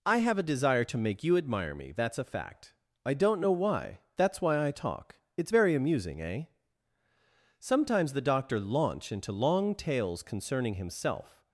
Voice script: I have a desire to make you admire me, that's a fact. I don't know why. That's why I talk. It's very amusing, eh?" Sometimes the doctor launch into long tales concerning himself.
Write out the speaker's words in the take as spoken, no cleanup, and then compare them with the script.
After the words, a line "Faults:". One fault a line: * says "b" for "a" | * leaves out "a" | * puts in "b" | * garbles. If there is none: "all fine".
I have a desire to make you admire me, that's a fact. I don't know why. That's why I talk. It's very amusing, eh?" Sometimes the doctor launch into long tales concerning himself.
Faults:
all fine